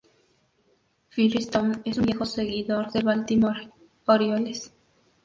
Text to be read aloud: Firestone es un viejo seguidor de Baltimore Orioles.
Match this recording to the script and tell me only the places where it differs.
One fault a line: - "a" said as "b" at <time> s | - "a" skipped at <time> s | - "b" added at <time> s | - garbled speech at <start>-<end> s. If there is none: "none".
none